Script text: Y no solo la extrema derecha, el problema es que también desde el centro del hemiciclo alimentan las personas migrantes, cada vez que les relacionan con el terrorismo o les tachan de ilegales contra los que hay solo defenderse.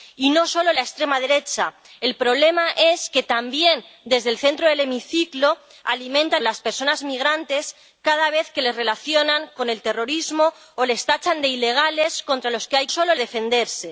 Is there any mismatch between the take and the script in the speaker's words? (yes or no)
no